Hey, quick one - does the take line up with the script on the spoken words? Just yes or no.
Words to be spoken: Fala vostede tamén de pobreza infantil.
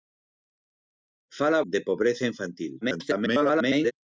no